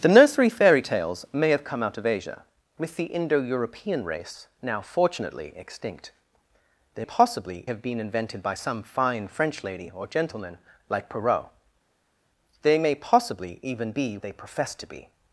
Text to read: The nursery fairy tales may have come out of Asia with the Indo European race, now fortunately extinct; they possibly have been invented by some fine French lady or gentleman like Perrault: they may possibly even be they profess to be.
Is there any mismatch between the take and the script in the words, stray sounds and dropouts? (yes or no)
no